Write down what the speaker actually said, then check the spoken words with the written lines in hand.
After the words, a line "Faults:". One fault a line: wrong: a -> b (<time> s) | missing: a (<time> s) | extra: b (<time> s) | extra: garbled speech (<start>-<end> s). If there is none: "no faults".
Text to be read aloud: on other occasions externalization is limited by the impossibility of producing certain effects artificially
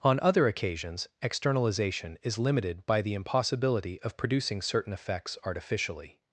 on other occasions externalization is limited by the impossibility of producing certain effects artificially
Faults:
no faults